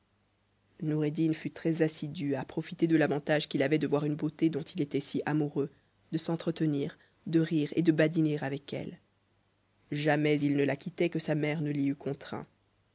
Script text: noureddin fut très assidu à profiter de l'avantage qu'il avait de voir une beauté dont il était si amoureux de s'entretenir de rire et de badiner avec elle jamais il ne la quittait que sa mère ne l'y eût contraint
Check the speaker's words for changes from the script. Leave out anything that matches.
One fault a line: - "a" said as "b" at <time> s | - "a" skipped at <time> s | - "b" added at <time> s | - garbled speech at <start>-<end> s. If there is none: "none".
none